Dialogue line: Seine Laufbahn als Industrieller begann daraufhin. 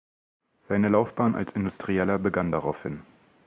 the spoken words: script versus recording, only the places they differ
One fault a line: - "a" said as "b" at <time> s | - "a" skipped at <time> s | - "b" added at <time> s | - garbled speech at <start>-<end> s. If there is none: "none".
none